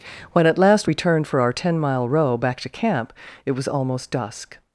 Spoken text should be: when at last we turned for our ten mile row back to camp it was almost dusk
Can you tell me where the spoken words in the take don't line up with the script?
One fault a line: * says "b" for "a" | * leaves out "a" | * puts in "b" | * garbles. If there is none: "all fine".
all fine